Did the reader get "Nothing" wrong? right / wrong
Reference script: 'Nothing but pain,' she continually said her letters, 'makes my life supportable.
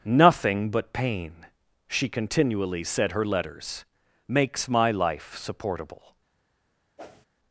right